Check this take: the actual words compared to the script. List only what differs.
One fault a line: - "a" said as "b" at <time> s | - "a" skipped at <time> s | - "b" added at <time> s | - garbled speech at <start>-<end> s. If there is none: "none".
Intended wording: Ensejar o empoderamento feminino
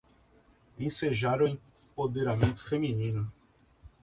none